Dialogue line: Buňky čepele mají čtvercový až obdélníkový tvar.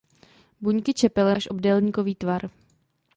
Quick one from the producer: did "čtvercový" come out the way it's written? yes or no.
no